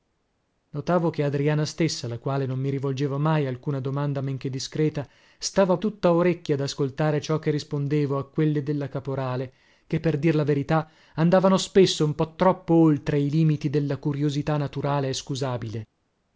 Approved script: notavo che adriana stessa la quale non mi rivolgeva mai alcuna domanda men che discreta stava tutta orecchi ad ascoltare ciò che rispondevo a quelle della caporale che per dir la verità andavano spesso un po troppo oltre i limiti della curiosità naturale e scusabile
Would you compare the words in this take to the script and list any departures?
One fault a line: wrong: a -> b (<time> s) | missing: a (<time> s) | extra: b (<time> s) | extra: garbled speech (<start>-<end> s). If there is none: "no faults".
no faults